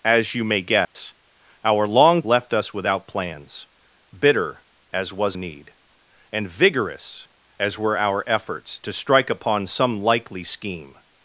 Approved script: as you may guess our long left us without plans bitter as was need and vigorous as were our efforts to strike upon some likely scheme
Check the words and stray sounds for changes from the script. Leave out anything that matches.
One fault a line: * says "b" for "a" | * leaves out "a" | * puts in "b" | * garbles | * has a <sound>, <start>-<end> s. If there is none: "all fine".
* has a dropout, 0.8-1.0 s